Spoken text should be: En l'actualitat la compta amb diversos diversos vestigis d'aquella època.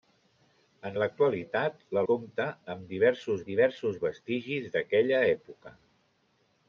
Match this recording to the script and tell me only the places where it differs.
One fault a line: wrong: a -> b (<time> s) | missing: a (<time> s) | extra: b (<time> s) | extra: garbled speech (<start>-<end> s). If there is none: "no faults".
no faults